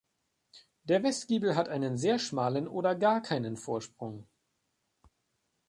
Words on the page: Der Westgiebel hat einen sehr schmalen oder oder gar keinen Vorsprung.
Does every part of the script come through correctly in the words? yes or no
no